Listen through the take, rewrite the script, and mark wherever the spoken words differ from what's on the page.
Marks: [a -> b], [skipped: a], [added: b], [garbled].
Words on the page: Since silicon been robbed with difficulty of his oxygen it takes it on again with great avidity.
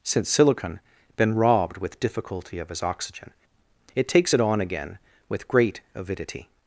Since silicon been robbed with difficulty of his oxygen it takes it on again with great avidity.